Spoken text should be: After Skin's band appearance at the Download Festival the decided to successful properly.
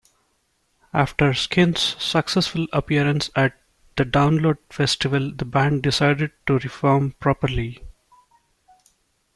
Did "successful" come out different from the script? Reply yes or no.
yes